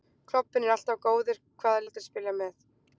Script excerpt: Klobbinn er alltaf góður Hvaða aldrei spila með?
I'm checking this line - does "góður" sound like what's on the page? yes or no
yes